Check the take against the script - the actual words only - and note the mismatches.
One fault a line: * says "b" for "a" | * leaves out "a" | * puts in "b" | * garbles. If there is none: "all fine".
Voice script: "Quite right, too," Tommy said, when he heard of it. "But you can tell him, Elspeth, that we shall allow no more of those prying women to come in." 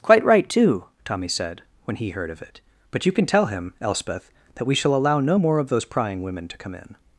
all fine